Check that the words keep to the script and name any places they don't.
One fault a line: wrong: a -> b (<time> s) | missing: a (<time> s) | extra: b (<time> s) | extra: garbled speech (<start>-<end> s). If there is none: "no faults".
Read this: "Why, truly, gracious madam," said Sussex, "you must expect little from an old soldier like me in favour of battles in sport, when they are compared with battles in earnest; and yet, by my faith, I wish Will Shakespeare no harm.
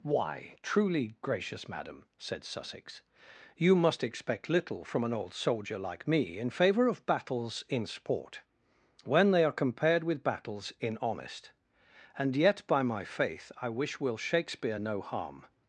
wrong: earnest -> honest (11.0 s)